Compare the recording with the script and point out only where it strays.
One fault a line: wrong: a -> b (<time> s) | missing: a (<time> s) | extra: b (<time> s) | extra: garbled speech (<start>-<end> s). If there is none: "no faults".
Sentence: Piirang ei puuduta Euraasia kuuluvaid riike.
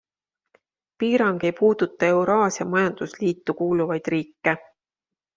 extra: majandusliitu (2.7 s)